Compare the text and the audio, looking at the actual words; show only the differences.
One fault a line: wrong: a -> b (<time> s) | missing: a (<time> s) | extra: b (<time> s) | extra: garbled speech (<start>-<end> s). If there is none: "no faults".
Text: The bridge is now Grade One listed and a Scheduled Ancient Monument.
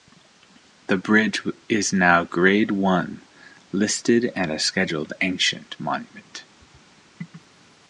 no faults